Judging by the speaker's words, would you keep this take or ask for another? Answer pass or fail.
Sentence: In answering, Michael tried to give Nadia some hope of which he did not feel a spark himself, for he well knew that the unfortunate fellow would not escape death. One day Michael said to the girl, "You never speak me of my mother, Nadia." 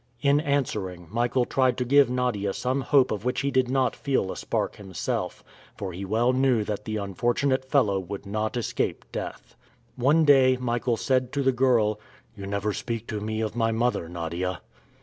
fail